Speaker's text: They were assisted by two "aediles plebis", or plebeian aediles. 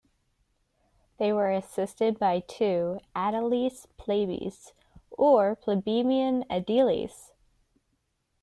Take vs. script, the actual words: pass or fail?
pass